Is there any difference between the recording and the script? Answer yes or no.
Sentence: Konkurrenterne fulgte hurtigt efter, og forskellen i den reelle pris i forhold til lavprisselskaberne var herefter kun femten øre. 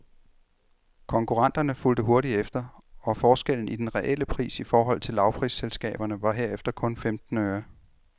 no